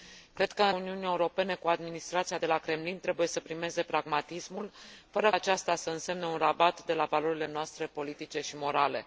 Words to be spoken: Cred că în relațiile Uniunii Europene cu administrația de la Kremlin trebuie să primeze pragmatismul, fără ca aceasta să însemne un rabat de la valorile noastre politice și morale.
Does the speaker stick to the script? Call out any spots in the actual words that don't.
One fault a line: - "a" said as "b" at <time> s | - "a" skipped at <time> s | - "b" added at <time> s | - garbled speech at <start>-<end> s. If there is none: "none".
- "relațiile" skipped at 0.7 s
- "ca" skipped at 5.3 s